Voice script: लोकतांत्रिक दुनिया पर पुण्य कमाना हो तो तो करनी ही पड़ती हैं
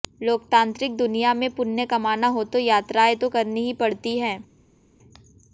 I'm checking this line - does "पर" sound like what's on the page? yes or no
no